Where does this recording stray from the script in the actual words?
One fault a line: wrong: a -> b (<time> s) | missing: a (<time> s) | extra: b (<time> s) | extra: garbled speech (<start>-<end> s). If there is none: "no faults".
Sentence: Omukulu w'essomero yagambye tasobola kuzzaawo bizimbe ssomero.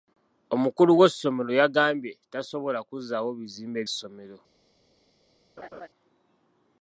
no faults